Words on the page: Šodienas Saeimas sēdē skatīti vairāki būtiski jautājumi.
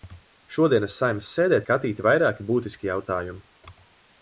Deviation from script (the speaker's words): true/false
false